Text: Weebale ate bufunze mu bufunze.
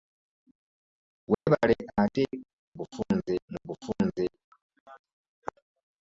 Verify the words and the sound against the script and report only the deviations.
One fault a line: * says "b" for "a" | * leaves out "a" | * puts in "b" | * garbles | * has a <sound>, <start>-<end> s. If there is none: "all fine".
* has a dropout, 1.3-1.5 s